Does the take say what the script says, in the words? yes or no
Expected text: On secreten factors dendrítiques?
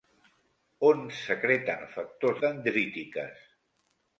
yes